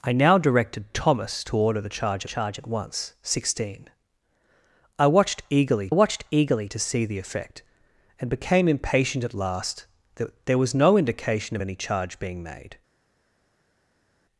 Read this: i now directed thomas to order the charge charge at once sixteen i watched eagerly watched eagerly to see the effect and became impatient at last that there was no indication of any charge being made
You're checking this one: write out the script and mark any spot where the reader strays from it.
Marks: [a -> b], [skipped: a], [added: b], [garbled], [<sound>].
i now directed thomas to order the charge charge at once sixteen i watched eagerly watched eagerly to see the effect and became impatient at last that there was no indication of any charge being made